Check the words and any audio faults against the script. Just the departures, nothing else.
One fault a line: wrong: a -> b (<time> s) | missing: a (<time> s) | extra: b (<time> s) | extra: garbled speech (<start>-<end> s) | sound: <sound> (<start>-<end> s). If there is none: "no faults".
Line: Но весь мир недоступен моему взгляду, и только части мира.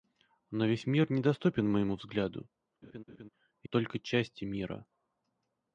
sound: laugh (2.8-3.3 s)